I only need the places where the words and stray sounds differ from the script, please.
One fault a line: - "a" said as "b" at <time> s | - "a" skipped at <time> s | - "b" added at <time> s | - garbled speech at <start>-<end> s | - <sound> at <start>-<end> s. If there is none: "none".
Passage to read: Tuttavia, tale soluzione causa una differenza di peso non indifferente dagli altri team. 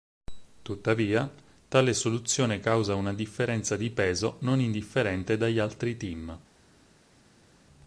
none